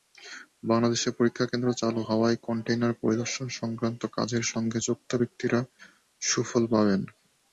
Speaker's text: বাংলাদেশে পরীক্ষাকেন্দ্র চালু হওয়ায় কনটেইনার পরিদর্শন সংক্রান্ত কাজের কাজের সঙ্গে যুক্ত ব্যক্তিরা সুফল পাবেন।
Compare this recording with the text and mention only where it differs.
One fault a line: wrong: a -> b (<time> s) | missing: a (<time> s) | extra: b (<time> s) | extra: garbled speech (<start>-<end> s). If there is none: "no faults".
missing: কাজের (4.4 s)